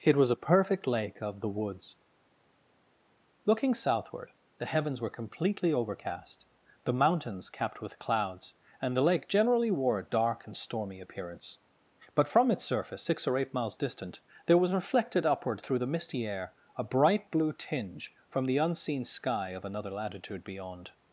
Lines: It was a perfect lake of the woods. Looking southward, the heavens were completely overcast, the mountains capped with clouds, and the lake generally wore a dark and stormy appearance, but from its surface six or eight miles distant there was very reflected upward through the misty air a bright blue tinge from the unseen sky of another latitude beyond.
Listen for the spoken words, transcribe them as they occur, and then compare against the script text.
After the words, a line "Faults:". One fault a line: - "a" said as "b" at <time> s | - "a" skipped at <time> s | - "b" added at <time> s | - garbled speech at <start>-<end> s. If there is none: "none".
It was a perfect lake of the woods. Looking southward, the heavens were completely overcast, the mountains capped with clouds, and the lake generally wore a dark and stormy appearance, but from its surface six or eight miles distant there was reflected upward through the misty air a bright blue tinge from the unseen sky of another latitude beyond.
Faults:
- "very" skipped at 14.7 s